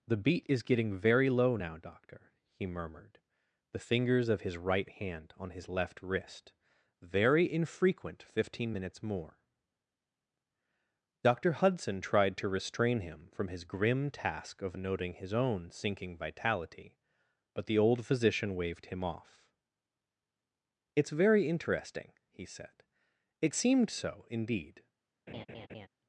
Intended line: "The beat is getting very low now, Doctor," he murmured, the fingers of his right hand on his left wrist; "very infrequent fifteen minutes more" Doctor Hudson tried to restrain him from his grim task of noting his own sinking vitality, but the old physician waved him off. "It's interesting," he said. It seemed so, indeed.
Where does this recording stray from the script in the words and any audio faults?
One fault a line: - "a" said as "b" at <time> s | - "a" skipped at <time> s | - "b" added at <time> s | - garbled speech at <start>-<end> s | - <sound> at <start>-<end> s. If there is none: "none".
- "very" added at 21.1 s
- laugh at 25.3-25.9 s